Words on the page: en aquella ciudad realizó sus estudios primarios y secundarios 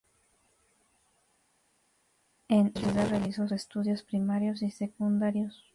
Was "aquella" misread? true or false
true